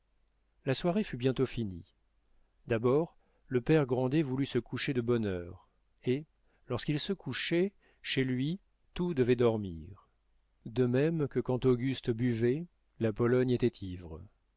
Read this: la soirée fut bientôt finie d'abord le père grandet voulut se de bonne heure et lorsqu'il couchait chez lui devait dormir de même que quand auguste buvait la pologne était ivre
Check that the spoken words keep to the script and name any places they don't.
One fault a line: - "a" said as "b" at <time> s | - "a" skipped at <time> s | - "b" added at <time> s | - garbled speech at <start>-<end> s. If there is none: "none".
- "coucher" added at 4.6 s
- "se" added at 7.0 s
- "tout" added at 8.9 s